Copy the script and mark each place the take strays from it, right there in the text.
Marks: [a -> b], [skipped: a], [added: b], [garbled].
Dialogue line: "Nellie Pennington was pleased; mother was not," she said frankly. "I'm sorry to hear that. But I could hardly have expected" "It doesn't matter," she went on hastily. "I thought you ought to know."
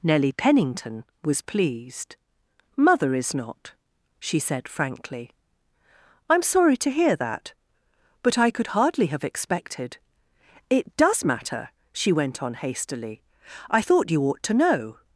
"Nellie Pennington was pleased; mother [was -> is] not," she said frankly. "I'm sorry to hear that. But I could hardly have expected" "It [doesn't -> does] matter," she went on hastily. "I thought you ought to know."